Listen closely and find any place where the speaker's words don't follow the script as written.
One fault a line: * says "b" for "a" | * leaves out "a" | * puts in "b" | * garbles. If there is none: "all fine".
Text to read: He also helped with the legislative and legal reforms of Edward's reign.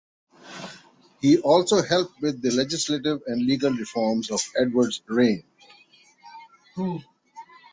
all fine